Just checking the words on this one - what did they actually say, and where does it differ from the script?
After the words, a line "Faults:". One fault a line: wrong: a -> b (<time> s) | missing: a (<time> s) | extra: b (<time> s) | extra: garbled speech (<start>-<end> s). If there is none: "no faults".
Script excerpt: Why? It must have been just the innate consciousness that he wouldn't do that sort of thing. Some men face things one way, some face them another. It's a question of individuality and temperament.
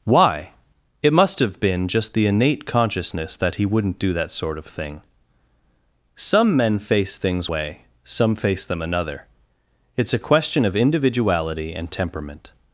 Why? It must have been just the innate consciousness that he wouldn't do that sort of thing. Some men face things way, some face them another. It's a question of individuality and temperament.
Faults:
missing: one (7.5 s)